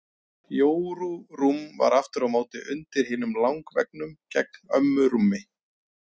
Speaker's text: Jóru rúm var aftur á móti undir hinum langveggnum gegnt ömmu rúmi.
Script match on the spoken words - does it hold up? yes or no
yes